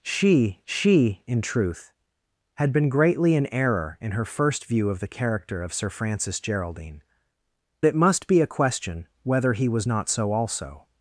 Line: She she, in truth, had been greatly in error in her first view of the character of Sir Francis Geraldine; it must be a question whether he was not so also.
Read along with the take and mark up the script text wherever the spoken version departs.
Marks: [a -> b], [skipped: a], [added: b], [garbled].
She she, in truth, had been greatly in error in her first view of the character of Sir Francis Geraldine; it must be a question whether he was not so also.